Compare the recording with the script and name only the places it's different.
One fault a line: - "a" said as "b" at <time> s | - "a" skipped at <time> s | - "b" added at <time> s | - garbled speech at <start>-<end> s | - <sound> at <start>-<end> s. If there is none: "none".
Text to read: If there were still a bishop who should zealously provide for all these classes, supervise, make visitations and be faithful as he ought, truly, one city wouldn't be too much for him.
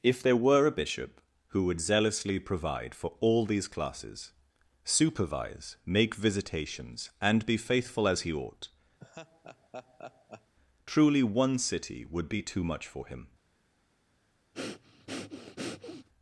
- "still" skipped at 0.7 s
- "should" said as "would" at 1.6 s
- laugh at 9.0-10.5 s
- "wouldn't" said as "would" at 12.0 s
- breath at 14.5-16.1 s